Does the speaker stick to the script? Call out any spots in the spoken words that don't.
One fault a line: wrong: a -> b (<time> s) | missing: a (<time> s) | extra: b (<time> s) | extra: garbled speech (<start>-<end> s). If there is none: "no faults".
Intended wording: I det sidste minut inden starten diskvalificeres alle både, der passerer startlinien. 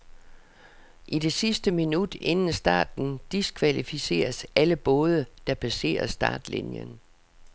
no faults